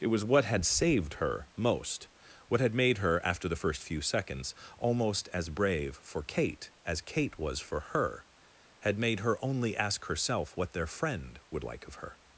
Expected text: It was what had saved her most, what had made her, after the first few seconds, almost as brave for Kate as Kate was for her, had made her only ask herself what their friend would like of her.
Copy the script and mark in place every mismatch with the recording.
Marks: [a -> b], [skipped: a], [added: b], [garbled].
It was what had saved her most, what had made her, after the first few seconds, almost as brave for Kate as Kate was for her, had made her only ask herself what their friend would like of her.